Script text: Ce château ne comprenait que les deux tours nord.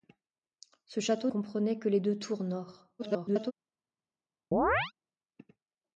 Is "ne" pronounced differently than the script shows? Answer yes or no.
yes